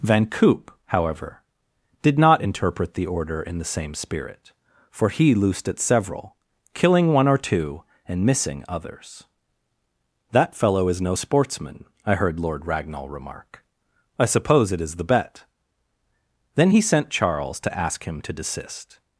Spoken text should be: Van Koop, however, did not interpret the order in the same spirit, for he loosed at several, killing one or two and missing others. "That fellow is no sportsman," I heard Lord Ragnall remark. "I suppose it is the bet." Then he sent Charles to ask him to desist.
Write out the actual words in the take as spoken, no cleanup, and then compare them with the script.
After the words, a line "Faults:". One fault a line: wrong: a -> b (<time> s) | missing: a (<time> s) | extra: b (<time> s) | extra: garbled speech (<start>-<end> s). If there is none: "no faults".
Van Koop, however, did not interpret the order in the same spirit, for he loosed at several, killing one or two and missing others. "That fellow is no sportsman," I heard Lord Ragnall remark. "I suppose it is the bet." Then he sent Charles to ask him to desist.
Faults:
no faults